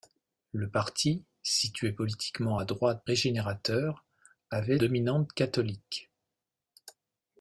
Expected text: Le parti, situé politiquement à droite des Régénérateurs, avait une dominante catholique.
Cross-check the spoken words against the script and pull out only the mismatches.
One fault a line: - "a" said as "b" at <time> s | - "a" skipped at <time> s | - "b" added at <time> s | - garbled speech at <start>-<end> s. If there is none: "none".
- "des" skipped at 3.0 s
- "une" skipped at 4.8 s